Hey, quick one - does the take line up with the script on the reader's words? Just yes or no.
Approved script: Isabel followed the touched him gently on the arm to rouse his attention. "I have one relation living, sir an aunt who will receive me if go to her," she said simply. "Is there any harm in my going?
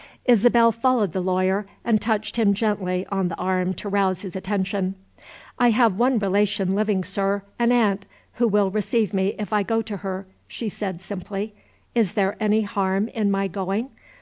no